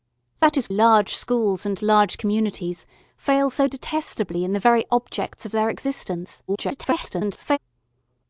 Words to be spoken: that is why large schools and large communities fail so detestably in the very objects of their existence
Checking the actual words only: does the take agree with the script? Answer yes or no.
no